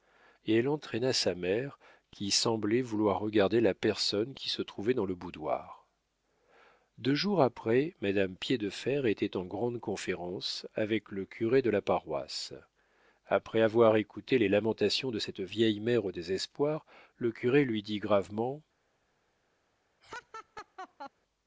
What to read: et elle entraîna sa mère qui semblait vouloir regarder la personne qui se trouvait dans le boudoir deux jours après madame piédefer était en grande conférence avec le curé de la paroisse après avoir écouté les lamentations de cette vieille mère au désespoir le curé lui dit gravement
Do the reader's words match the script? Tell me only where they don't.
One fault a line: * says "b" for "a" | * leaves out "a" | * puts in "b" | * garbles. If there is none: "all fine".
all fine